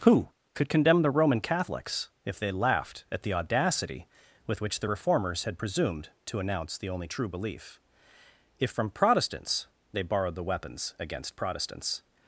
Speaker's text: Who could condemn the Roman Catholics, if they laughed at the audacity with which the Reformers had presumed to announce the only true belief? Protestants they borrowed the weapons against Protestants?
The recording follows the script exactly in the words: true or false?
false